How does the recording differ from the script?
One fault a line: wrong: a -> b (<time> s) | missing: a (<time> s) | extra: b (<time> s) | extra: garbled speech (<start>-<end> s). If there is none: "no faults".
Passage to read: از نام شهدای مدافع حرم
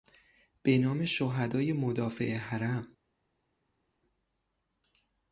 wrong: از -> به (0.6 s)